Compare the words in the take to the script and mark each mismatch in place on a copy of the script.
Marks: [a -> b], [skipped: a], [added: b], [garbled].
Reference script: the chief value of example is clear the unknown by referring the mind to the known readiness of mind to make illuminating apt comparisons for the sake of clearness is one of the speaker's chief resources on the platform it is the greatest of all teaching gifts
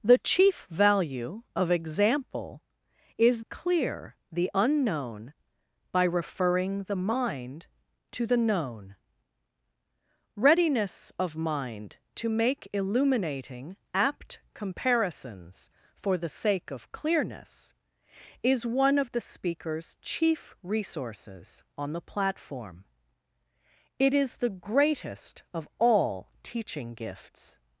the chief value of example is clear the unknown by referring the mind to the known readiness of mind to make illuminating apt comparisons for the sake of clearness is one of the speaker's chief resources on the platform it is the greatest of all teaching gifts